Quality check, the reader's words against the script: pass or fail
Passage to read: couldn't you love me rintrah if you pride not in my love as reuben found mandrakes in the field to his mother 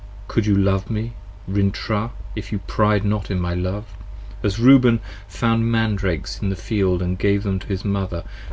fail